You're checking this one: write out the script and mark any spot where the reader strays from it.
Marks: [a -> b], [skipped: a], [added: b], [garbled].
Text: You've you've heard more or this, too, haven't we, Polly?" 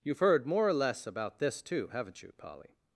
You've [skipped: you've] heard more or [added: less about] this, too, haven't [we, -> you] Polly?"